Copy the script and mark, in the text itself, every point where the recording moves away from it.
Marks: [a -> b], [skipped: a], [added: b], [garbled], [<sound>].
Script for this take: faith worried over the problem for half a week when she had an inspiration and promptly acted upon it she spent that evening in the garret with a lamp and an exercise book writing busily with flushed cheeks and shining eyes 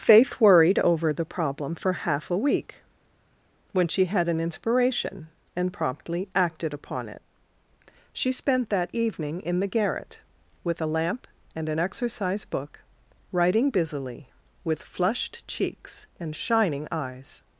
faith worried over the problem for half a week when she had an inspiration and promptly acted upon it she spent that evening in the garret with a lamp and an exercise book writing busily with flushed cheeks and shining eyes